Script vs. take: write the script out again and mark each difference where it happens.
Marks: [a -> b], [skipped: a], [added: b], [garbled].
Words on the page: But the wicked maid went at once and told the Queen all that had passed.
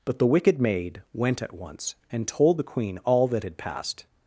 But the wicked maid went at once and told the Queen all that had passed.